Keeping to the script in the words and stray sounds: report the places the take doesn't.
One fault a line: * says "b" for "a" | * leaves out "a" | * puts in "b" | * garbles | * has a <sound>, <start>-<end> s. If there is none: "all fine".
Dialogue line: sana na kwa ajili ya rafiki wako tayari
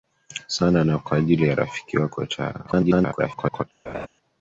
* garbles
* has a laugh, 3.9-4.1 s